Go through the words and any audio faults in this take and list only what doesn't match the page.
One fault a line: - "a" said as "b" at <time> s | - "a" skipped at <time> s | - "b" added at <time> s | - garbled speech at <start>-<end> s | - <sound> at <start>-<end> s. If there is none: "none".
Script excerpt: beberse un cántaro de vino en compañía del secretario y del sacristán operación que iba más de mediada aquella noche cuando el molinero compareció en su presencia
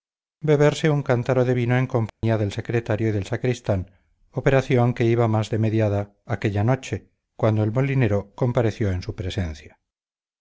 - dropout at 2.1-2.2 s